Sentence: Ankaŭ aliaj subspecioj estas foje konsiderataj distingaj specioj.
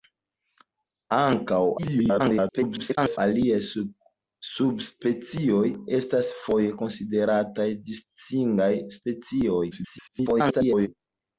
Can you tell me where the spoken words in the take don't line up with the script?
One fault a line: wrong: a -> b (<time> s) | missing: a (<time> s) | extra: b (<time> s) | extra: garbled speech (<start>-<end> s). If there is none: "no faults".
extra: garbled speech (1.8-3.2 s)
extra: garbled speech (9.7-10.9 s)